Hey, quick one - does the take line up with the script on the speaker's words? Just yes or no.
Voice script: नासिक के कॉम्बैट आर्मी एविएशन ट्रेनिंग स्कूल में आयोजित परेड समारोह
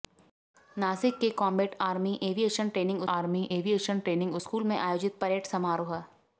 no